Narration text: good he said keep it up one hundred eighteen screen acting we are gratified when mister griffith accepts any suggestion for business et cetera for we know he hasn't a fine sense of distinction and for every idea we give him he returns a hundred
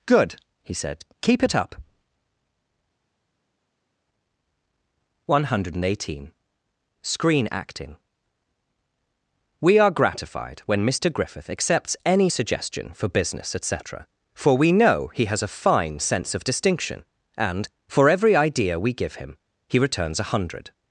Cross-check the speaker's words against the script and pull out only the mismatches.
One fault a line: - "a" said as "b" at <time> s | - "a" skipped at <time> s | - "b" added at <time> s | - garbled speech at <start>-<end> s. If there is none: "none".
- "hasn't" said as "has" at 15.2 s